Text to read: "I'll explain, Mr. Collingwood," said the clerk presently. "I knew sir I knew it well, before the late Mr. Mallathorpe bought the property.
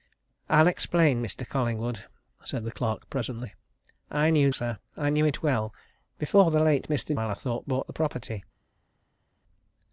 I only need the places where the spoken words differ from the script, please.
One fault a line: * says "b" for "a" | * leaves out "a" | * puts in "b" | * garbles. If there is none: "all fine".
all fine